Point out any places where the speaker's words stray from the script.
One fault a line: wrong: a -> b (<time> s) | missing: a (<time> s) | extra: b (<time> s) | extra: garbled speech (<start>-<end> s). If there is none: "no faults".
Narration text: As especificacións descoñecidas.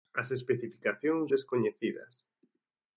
no faults